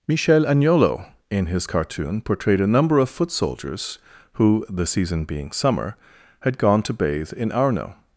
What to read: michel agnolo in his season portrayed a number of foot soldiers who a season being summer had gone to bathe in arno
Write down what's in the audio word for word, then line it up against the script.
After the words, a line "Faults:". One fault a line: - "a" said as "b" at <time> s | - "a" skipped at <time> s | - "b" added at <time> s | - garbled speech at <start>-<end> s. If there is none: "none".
michel agnolo in his cartoon portrayed a number of foot soldiers who the season being summer had gone to bathe in arno
Faults:
- "season" said as "cartoon" at 1.7 s
- "a" said as "the" at 4.7 s